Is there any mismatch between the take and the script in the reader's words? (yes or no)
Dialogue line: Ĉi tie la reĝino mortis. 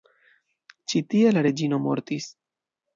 no